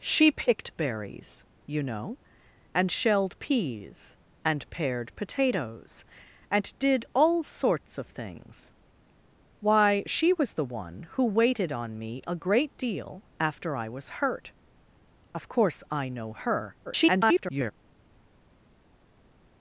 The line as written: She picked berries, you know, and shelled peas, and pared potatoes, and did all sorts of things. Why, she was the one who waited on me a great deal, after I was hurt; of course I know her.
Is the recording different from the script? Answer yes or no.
yes